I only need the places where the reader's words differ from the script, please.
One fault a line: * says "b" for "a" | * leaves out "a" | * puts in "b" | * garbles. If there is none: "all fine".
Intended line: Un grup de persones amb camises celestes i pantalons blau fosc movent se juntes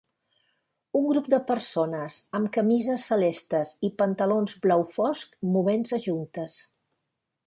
all fine